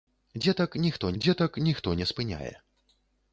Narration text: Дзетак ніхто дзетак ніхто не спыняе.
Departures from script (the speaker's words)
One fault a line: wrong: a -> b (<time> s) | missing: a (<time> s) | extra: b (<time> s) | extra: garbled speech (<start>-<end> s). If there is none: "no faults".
no faults